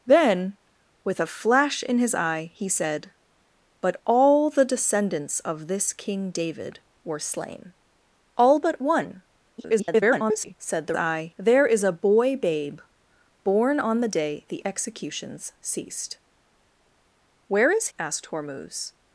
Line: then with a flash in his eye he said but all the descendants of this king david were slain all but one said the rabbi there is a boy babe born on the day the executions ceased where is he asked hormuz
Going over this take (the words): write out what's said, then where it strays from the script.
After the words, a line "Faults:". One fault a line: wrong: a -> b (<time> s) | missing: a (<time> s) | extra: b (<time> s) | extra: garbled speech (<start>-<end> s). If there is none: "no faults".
then with a flash in his eye he said but all the descendants of this king david were slain all but one [garbled] said the eye there is a boy babe born on the day the executions ceased where is asked hormuz
Faults:
extra: garbled speech (9.6-10.5 s)
wrong: rabbi -> eye (11.0 s)
missing: he (17.9 s)